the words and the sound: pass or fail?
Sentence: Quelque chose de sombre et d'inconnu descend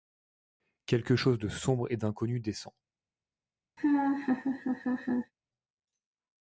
fail